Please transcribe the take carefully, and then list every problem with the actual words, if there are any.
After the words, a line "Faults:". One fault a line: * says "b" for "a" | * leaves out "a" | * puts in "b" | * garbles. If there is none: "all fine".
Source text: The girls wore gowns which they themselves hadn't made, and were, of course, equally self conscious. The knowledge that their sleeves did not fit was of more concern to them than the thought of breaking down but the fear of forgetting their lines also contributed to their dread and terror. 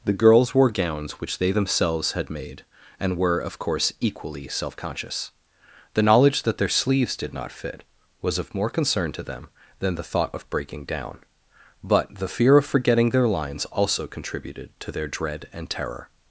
The girls wore gowns which they themselves had made, and were, of course, equally self conscious. The knowledge that their sleeves did not fit was of more concern to them than the thought of breaking down but the fear of forgetting their lines also contributed to their dread and terror.
Faults:
* says "had" for "hadn't"